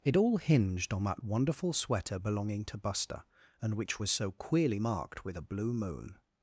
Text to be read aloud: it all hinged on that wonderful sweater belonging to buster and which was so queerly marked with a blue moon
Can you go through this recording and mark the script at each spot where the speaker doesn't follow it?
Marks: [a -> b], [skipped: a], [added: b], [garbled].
it all hinged on that wonderful sweater belonging to buster and which was so queerly marked with a blue moon